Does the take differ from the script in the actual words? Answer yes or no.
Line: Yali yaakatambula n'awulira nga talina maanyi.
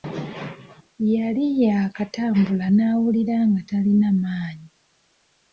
no